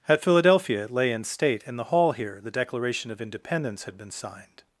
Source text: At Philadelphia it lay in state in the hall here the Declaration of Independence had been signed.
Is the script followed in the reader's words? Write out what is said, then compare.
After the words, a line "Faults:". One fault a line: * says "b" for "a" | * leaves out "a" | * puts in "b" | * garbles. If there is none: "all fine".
At Philadelphia it lay in state in the hall here the Declaration of Independence had been signed.
Faults:
all fine